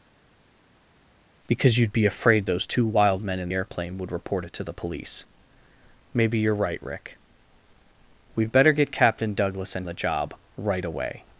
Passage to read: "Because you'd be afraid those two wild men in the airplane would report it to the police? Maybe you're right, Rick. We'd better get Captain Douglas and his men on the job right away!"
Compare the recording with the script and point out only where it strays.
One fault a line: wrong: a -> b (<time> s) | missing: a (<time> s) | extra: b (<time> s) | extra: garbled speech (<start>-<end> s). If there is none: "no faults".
missing: the (3.5 s)
missing: his men on (9.9 s)